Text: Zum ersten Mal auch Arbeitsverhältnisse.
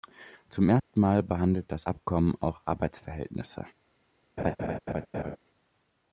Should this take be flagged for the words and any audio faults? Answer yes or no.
yes